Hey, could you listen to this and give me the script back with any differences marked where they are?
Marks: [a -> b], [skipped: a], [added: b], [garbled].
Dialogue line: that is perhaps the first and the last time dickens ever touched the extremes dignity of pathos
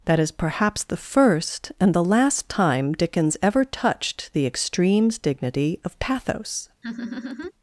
that is perhaps the first and the last time dickens ever touched the extremes dignity of pathos